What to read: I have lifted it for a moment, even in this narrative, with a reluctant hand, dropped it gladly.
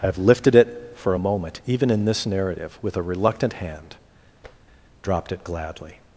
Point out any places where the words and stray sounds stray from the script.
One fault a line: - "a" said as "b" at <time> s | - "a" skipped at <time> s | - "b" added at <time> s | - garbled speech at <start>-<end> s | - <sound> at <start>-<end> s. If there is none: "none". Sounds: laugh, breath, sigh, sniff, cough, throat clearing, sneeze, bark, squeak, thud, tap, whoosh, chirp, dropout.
- tap at 4.4-4.6 s